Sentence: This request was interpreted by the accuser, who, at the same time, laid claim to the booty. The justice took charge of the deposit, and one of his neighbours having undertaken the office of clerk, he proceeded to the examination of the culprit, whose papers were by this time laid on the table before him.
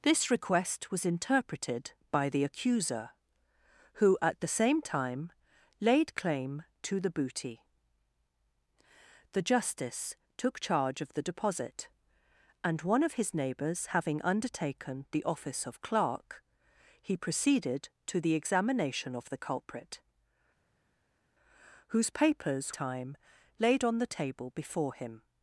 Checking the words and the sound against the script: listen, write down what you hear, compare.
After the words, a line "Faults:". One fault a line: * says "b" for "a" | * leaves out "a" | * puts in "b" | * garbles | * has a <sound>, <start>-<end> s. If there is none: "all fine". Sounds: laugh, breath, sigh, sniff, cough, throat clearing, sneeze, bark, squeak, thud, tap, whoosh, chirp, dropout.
This request was interpreted by the accuser, who, at the same time, laid claim to the booty. The justice took charge of the deposit, and one of his neighbours having undertaken the office of clerk, he proceeded to the examination of the culprit, whose papers time laid on the table before him.
Faults:
* leaves out "were by this"